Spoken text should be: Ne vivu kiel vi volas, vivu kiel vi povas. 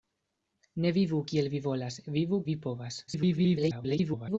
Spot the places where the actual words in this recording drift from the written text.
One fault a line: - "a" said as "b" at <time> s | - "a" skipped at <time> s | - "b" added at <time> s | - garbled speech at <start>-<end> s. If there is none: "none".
- "kiel" skipped at 2.4 s
- garbled speech at 3.1-4.4 s